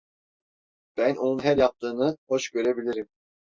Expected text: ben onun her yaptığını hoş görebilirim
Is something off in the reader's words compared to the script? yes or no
no